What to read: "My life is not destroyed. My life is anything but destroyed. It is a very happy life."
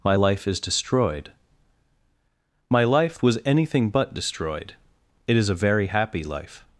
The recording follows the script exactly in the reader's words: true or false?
false